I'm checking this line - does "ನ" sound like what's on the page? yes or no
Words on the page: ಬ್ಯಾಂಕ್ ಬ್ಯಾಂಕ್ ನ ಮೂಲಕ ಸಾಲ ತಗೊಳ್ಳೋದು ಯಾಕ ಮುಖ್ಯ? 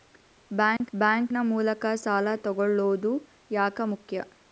yes